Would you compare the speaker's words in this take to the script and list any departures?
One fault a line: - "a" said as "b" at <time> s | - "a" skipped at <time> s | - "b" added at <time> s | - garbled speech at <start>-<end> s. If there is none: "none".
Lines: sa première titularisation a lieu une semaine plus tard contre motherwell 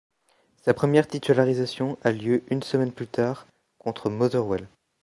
none